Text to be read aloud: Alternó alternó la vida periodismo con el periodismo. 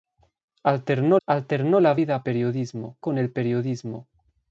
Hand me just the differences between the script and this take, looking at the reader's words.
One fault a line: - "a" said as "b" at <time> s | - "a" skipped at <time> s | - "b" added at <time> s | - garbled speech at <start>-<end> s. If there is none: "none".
none